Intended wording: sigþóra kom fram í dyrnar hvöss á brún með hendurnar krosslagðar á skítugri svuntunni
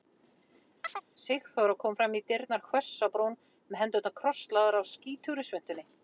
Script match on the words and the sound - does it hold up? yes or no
no